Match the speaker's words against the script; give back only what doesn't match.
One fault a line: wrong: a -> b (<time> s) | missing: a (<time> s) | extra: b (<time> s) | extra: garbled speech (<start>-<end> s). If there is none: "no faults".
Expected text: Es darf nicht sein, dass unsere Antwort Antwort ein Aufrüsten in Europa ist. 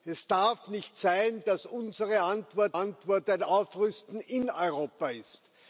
no faults